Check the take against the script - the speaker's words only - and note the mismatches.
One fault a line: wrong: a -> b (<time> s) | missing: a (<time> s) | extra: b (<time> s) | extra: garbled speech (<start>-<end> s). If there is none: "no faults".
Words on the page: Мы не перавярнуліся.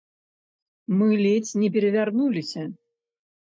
extra: ледзь (1.2 s)